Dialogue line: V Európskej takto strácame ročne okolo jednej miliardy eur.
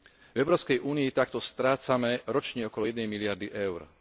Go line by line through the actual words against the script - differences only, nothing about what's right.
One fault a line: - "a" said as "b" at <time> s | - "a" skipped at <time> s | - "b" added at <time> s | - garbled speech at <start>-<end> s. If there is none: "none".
- "únii" added at 0.8 s